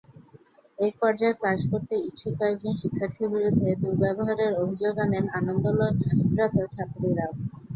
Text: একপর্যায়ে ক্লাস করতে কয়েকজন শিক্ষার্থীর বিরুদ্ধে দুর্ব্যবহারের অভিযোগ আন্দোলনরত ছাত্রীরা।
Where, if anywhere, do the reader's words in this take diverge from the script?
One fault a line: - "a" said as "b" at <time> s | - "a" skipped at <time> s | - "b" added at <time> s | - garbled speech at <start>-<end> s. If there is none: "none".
- "ইচ্ছুক" added at 2.0 s
- "আনেন" added at 5.0 s